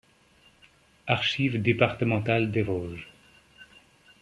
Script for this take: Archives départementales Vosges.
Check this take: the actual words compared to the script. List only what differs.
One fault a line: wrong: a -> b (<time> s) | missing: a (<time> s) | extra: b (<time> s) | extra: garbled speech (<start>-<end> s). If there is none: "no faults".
extra: des (2.5 s)